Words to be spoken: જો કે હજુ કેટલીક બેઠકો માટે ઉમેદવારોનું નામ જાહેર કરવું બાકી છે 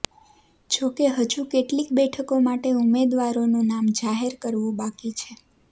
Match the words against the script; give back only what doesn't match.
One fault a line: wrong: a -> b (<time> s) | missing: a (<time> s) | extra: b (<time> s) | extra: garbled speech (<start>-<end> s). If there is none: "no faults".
no faults